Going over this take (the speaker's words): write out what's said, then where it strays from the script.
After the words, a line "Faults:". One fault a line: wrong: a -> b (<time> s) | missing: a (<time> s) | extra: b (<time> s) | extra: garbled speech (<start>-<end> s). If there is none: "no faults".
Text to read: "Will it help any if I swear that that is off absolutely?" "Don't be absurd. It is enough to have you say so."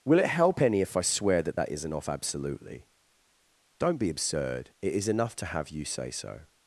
"Will it help any if I swear that that isn't off absolutely?" "Don't be absurd. It is enough to have you say so."
Faults:
wrong: is -> isn't (1.7 s)